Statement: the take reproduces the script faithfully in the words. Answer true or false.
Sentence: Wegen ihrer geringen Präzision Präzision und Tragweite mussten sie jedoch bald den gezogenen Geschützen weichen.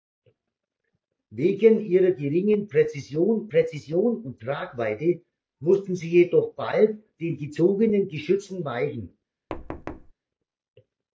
true